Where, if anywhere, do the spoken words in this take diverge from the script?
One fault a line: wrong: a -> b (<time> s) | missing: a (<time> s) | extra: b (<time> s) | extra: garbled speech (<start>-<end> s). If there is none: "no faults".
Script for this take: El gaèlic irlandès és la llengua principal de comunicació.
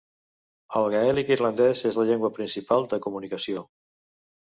no faults